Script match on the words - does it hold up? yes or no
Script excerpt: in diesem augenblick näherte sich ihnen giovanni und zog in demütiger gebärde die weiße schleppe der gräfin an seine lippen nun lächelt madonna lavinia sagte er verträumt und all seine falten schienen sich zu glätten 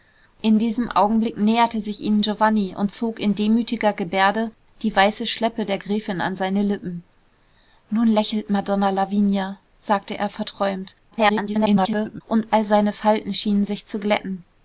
no